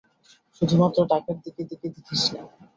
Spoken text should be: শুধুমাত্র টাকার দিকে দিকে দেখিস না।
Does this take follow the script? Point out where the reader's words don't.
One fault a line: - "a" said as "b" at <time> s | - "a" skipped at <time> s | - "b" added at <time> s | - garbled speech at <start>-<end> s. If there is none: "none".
none